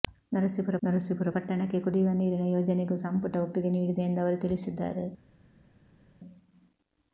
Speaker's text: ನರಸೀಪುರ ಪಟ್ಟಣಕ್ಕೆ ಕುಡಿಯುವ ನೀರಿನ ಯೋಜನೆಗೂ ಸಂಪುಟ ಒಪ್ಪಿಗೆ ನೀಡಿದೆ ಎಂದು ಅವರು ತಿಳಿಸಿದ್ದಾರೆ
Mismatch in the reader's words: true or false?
true